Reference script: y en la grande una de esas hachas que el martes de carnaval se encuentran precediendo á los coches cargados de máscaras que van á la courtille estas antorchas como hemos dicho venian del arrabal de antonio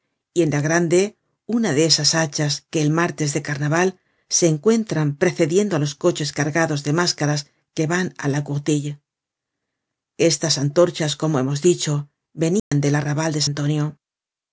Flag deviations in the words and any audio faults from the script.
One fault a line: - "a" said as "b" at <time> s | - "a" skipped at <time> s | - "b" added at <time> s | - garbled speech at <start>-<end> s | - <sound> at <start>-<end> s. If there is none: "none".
- dropout at 12.6-12.7 s